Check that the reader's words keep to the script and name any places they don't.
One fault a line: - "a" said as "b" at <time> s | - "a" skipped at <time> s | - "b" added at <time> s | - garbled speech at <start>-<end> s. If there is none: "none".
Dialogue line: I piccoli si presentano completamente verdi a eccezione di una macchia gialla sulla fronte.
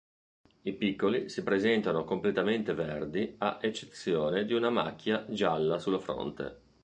none